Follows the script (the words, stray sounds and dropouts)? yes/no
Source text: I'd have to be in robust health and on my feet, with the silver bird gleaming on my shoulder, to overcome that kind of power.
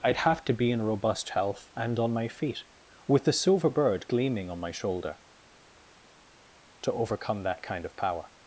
yes